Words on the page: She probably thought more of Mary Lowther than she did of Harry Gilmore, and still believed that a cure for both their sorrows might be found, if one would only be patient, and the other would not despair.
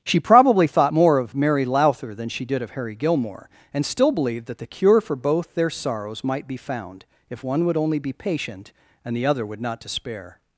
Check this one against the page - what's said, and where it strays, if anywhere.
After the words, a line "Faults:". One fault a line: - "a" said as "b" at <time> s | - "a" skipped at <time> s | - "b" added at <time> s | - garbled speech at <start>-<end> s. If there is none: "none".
She probably thought more of Mary Lowther than she did of Harry Gilmore, and still believed that the cure for both their sorrows might be found, if one would only be patient, and the other would not despair.
Faults:
- "a" said as "the" at 4.6 s